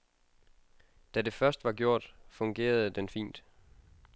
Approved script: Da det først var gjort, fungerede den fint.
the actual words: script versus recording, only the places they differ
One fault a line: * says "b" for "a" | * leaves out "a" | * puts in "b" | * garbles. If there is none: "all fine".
all fine